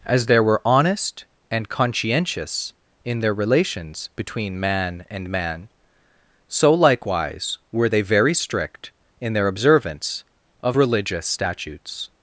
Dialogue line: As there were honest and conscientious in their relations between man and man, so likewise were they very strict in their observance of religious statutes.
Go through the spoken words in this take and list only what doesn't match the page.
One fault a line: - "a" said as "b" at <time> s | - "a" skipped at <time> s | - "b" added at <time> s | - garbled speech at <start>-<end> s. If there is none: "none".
none